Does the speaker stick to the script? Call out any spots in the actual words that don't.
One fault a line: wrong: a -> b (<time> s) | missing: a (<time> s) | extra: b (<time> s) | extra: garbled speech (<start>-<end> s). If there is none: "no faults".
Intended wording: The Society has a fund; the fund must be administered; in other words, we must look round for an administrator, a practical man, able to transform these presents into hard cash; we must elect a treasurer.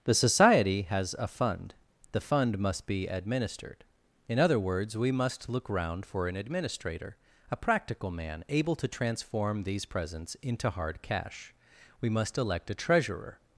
no faults